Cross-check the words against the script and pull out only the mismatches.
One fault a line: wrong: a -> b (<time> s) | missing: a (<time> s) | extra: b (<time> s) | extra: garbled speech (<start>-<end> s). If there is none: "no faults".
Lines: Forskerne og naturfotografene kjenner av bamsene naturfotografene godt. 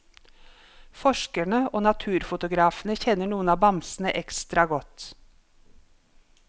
extra: noen (3.3 s)
wrong: naturfotografene -> ekstra (4.2 s)